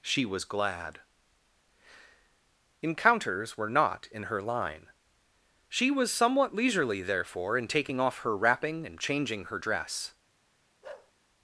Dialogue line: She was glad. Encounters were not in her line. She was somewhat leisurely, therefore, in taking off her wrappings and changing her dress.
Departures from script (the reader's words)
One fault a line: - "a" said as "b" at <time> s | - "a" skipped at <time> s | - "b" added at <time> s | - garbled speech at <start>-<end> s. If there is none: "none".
- "wrappings" said as "wrapping" at 8.4 s